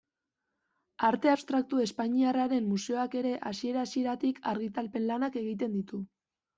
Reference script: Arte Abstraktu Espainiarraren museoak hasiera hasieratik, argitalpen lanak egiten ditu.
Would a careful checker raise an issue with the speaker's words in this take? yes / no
yes